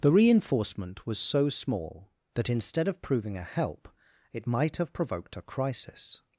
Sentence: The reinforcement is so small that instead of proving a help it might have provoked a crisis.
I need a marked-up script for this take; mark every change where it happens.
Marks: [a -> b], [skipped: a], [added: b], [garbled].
The reinforcement [is -> was] so small that instead of proving a help it might have provoked a crisis.